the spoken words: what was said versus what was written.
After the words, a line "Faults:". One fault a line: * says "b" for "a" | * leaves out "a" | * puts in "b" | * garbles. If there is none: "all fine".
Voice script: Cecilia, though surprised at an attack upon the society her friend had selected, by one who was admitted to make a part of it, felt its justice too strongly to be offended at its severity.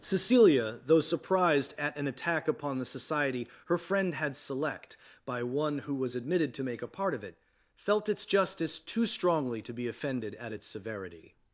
Cecilia, though surprised at an attack upon the society her friend had select, by one who was admitted to make a part of it, felt its justice too strongly to be offended at its severity.
Faults:
* says "select" for "selected"